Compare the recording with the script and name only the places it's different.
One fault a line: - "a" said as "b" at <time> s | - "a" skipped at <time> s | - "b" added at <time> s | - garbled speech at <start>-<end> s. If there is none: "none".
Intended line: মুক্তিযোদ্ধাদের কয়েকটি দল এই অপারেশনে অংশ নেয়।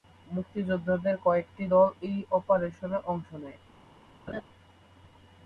none